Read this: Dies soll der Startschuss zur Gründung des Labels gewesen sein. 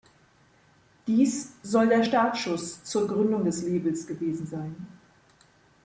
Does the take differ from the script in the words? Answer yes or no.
no